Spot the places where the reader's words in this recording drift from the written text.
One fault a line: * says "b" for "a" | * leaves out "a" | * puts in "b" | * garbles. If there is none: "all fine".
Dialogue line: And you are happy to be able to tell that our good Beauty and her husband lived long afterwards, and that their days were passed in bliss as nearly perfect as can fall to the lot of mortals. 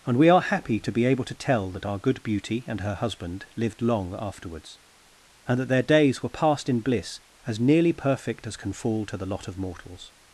* says "we" for "you"